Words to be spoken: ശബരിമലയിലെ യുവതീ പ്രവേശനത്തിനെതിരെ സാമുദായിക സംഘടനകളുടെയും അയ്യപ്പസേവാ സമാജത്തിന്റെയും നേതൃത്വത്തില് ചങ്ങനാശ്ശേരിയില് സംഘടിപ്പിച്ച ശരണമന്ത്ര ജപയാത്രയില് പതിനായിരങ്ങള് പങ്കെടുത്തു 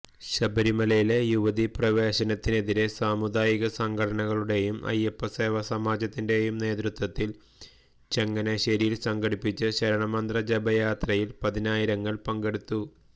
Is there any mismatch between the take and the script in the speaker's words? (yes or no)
no